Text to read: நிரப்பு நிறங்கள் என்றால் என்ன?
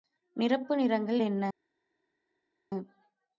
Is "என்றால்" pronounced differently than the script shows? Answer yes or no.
yes